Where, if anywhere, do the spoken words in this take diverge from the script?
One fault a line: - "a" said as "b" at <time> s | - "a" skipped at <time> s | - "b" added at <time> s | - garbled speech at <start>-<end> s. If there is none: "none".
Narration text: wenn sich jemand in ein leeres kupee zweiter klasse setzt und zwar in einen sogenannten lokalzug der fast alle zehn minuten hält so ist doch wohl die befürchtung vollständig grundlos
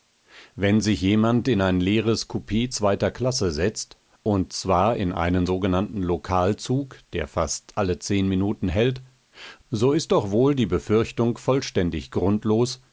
none